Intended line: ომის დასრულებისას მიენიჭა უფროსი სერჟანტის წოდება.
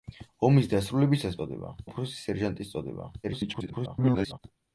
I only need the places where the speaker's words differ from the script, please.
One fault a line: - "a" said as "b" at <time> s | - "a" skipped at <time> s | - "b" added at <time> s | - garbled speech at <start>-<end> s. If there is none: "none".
- "მიენიჭა" said as "წოდება" at 1.4 s
- garbled speech at 3.2-4.4 s